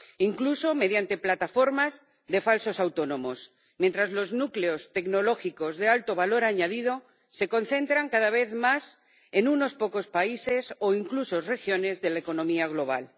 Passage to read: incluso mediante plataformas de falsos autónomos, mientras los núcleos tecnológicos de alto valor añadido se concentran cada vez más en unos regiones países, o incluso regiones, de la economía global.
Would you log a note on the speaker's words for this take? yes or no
yes